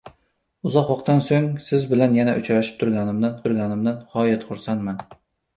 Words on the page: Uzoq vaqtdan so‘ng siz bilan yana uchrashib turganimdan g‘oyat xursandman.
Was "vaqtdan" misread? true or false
false